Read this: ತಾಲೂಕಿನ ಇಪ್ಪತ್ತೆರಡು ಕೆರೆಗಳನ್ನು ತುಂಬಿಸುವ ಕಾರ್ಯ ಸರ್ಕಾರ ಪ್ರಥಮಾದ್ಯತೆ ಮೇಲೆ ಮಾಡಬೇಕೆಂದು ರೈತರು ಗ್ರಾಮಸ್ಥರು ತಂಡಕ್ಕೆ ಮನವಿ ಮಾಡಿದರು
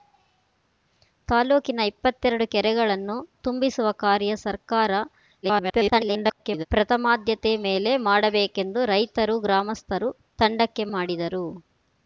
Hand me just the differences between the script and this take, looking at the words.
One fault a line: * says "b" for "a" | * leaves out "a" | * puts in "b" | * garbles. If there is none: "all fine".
* garbles
* leaves out "ಮನವಿ"